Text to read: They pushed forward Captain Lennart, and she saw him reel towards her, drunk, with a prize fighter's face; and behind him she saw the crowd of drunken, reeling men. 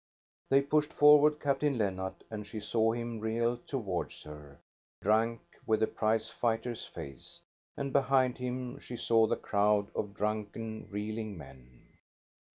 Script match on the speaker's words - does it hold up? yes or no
yes